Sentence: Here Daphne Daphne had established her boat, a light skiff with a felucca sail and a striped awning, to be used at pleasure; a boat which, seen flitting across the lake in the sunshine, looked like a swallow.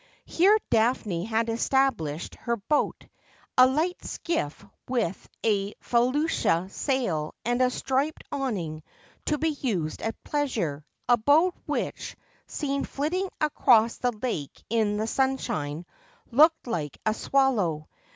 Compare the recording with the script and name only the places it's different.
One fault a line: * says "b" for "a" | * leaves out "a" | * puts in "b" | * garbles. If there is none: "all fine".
* leaves out "Daphne"